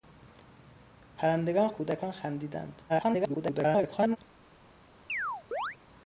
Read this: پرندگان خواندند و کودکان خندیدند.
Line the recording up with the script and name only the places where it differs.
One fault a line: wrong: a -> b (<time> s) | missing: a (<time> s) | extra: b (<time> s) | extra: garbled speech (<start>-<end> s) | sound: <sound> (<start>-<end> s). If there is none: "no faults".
missing: خواندند (1.7 s)
extra: garbled speech (2.9-4.2 s)
sound: chirp (5.1-5.8 s)